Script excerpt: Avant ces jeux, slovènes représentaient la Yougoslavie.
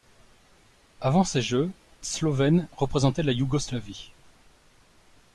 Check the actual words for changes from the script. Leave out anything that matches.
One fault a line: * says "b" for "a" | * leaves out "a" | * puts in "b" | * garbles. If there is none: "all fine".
all fine